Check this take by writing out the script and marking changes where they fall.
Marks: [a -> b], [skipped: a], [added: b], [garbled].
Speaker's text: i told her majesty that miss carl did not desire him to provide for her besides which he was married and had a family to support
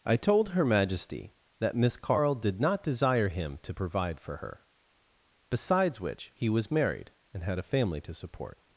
i told her majesty that miss carl did not desire him to provide for her besides which he was married and had a family to support